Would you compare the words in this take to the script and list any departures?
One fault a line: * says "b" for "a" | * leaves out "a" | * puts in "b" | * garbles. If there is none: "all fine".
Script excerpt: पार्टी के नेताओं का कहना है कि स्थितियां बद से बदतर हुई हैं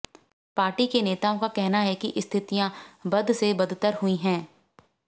all fine